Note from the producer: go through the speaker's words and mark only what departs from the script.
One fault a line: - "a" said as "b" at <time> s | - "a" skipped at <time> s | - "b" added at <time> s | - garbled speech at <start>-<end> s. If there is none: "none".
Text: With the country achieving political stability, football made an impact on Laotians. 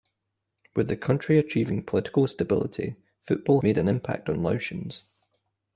none